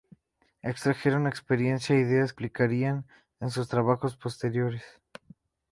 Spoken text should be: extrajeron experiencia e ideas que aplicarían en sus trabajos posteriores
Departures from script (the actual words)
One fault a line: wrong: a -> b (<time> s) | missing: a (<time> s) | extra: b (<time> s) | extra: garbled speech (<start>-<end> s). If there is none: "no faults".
missing: que (2.3 s)